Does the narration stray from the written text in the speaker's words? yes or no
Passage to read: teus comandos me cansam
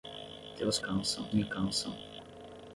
yes